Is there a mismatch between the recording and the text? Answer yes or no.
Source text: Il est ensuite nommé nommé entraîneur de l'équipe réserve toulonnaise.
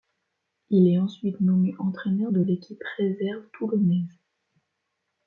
yes